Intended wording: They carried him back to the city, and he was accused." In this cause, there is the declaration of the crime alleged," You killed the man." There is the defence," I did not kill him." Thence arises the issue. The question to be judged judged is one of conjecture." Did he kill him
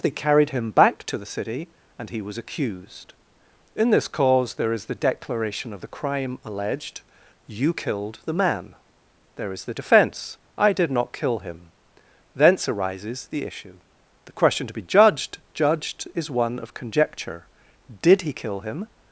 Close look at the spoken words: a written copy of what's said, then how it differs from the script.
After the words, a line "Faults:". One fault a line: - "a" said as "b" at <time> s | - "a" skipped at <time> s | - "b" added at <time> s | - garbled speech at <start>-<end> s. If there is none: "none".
They carried him back to the city, and he was accused." In this cause, there is the declaration of the crime alleged," You killed the man." There is the defence," I did not kill him." Thence arises the issue. The question to be judged judged is one of conjecture." Did he kill him
Faults:
none